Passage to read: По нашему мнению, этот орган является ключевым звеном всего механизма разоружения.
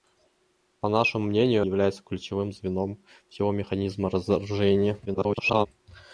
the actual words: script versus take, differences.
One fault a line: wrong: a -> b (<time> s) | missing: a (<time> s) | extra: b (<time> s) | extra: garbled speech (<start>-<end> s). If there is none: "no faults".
missing: этот орган (1.6 s)
extra: garbled speech (5.0-5.7 s)